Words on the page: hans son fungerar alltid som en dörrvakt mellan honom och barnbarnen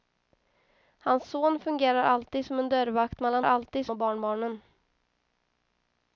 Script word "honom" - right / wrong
wrong